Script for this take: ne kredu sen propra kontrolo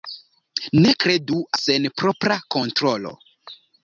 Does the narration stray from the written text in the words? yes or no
no